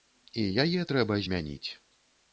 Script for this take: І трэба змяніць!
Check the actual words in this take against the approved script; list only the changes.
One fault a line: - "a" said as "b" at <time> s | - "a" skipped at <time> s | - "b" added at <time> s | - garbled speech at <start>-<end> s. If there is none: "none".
- "яе" added at 0.6 s